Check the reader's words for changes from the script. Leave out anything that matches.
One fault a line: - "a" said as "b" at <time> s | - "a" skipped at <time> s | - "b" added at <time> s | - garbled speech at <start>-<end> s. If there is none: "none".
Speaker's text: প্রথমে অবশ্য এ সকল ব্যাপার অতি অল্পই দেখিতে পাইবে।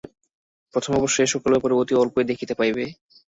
none